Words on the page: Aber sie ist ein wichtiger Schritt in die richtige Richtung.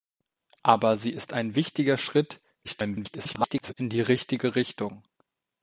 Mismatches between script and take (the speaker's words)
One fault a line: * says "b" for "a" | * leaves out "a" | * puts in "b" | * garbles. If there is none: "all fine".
* garbles